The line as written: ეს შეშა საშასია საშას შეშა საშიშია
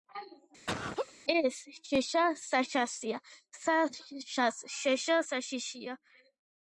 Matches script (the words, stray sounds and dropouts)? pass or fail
fail